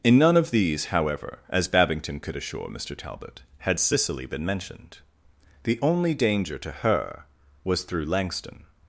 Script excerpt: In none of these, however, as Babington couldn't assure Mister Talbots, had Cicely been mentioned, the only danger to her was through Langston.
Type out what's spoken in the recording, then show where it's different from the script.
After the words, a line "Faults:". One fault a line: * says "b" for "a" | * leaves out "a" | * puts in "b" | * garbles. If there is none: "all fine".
In none of these, however, as Babington could assure Mister Talbot, had Cicely been mentioned, the only danger to her was through Langston.
Faults:
* says "could" for "couldn't"
* says "Talbot" for "Talbots"